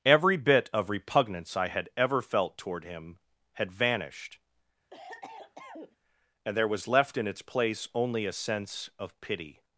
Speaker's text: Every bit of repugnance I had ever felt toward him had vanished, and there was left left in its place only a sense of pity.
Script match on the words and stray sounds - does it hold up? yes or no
no